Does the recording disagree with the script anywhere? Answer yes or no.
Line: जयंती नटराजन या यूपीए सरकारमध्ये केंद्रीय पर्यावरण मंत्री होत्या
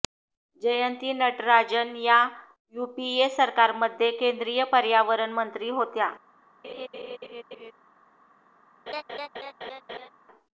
no